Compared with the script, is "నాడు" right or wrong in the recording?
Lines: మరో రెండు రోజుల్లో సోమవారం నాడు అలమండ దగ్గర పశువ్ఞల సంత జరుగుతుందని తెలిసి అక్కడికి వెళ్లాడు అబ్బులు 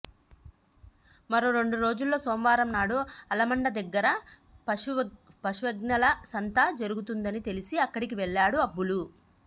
right